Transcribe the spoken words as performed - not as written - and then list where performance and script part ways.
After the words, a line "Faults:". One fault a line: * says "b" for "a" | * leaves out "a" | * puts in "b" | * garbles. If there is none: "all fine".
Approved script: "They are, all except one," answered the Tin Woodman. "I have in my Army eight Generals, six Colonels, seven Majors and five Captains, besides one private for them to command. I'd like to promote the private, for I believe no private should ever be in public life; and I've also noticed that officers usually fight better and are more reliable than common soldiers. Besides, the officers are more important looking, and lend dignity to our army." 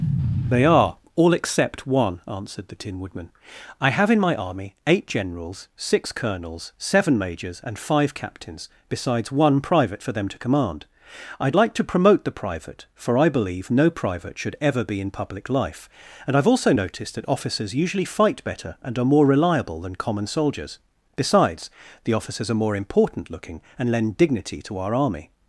"They are, all except one," answered the Tin Woodman. "I have in my Army eight Generals, six Colonels, seven Majors and five Captains, besides one private for them to command. I'd like to promote the private, for I believe no private should ever be in public life; and I've also noticed that officers usually fight better and are more reliable than common soldiers. Besides, the officers are more important looking, and lend dignity to our army."
Faults:
all fine